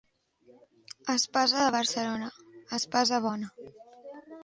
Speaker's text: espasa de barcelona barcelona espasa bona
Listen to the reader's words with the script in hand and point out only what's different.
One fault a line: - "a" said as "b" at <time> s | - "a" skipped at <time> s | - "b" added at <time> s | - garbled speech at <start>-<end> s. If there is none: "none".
- "barcelona" skipped at 2.3 s